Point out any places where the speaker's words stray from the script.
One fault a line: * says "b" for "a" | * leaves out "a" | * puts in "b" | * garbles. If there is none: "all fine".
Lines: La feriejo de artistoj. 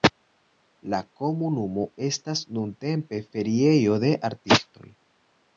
* puts in "komunumo estas nuntempe"